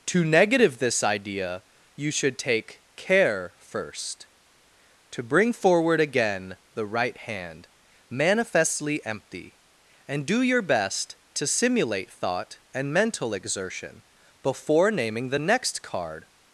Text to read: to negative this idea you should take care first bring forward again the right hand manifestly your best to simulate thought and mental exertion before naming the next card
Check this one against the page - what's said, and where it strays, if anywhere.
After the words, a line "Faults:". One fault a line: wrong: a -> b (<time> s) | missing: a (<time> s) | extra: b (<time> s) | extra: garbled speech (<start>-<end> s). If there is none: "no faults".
to negative this idea you should take care first to bring forward again the right hand manifestly empty and do your best to simulate thought and mental exertion before naming the next card
Faults:
extra: to (5.1 s)
extra: empty and do (9.1 s)